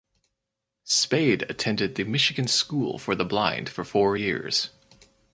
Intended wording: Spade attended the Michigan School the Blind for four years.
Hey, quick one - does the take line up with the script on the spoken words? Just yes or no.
no